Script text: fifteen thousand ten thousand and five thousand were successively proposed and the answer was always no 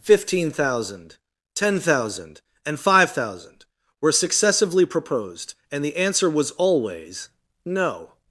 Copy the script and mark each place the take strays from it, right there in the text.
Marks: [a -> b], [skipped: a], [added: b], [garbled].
fifteen thousand ten thousand and five thousand were successively proposed and the answer was always no